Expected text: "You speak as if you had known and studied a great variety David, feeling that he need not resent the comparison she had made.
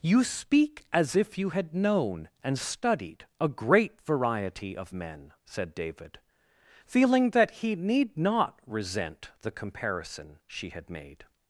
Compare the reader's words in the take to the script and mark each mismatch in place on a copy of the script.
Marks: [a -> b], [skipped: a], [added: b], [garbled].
"You speak as if you had known and studied a great variety [added: of men said] David, feeling that he need not resent the comparison she had made.